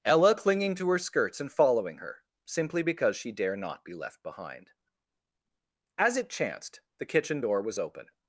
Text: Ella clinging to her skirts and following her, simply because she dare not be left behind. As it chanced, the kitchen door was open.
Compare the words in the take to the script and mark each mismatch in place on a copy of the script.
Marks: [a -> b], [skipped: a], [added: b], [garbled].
Ella clinging to her skirts and following her, simply because she dare not be left behind. As it chanced, the kitchen door was open.